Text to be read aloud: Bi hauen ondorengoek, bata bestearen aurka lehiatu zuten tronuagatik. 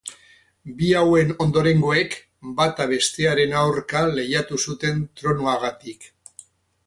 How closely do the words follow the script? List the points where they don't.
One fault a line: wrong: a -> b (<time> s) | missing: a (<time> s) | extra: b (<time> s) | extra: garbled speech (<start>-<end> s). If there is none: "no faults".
no faults